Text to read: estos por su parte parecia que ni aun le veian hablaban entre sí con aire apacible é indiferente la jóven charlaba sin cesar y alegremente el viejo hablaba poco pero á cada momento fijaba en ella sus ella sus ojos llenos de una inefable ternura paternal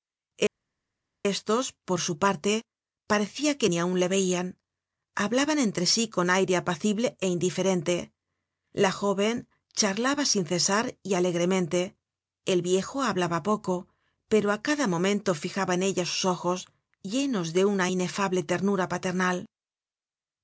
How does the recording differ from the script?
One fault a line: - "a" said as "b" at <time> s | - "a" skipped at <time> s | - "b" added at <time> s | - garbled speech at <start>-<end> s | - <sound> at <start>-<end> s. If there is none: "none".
- "ella sus" skipped at 16.2 s